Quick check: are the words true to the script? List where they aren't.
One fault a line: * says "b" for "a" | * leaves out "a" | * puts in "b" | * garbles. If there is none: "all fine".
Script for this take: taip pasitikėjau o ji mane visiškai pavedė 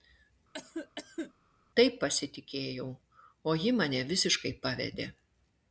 all fine